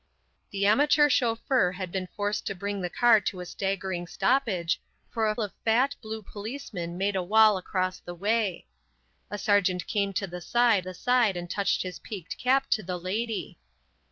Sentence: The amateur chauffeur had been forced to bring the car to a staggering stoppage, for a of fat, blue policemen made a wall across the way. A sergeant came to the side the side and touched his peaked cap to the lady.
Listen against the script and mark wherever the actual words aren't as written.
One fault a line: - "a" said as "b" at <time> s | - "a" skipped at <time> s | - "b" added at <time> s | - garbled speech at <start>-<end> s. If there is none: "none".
none